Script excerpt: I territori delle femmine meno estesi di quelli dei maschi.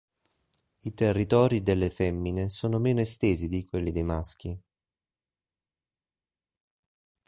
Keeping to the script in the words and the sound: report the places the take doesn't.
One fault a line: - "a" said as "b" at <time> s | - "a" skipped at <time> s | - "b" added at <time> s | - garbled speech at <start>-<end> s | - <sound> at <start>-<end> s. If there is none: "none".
- "sono" added at 2.5 s